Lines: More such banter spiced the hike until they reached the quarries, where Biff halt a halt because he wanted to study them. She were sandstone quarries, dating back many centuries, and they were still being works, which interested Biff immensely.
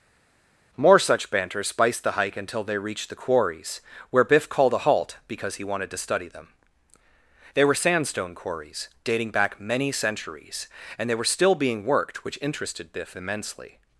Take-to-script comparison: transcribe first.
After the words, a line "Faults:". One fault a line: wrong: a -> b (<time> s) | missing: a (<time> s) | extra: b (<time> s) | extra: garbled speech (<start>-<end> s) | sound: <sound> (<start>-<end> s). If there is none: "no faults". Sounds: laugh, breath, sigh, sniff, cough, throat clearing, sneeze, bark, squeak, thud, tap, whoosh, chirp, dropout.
More such banter spiced the hike until they reached the quarries, where Biff called a halt because he wanted to study them. They were sandstone quarries, dating back many centuries, and they were still being worked, which interested Biff immensely.
Faults:
wrong: halt -> called (4.5 s)
wrong: She -> They (7.5 s)
wrong: works -> worked (11.8 s)